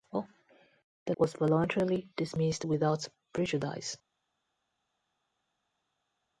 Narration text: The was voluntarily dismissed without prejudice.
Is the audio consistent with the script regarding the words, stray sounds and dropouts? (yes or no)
yes